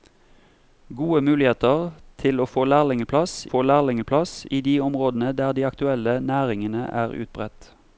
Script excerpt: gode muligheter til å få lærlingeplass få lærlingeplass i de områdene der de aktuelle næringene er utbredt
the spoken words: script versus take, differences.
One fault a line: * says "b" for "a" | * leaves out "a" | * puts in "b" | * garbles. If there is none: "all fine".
all fine